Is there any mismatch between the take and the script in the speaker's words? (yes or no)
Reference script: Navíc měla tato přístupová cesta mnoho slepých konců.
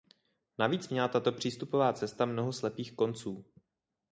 no